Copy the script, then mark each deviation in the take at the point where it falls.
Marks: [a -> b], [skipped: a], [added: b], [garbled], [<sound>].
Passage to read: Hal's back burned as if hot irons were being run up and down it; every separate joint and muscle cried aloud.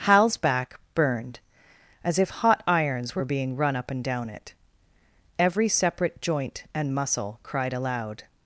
Hal's back burned as if hot irons were being run up and down it; every separate joint and muscle cried aloud.